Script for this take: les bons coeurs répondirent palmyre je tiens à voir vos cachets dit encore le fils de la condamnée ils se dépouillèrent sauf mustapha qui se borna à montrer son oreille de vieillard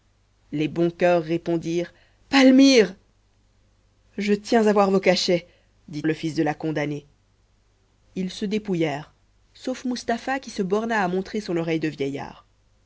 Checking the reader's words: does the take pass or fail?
fail